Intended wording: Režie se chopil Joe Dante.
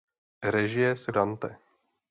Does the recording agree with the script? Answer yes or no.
no